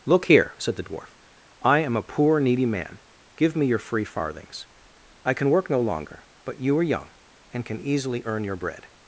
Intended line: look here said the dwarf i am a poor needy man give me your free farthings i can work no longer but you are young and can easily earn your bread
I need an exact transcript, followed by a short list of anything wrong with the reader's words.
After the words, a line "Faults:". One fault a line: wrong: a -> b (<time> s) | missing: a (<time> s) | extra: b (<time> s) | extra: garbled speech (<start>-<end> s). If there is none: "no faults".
look here said the dwarf i am a poor needy man give me your free farthings i can work no longer but you are young and can easily earn your bread
Faults:
no faults